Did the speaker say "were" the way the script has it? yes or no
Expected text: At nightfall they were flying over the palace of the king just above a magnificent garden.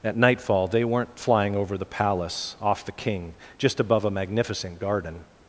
no